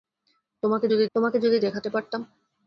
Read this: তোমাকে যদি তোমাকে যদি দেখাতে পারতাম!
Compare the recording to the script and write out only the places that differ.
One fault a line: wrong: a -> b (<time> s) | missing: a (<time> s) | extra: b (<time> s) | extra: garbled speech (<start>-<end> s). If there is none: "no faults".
no faults